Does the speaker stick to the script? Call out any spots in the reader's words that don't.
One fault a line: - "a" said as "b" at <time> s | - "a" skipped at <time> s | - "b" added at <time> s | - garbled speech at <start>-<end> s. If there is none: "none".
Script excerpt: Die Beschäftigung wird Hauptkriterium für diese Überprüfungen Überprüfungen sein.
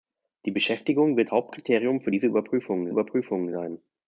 none